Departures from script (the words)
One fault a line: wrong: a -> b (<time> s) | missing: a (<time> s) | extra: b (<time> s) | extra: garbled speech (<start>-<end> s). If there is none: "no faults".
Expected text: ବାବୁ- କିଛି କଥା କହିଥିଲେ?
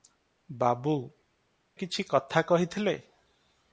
no faults